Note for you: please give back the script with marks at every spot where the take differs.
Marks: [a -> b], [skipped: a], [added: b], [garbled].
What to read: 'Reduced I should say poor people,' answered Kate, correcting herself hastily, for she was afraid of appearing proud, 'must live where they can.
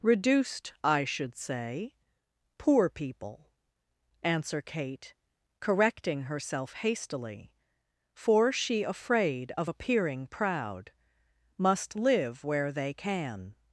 'Reduced I should say poor people,' [answered -> answer] Kate, correcting herself hastily, for she [skipped: was] afraid of appearing proud, 'must live where they can.